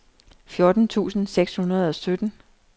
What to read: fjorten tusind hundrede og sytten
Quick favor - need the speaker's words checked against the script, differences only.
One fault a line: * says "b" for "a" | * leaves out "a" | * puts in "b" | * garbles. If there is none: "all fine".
* puts in "seks"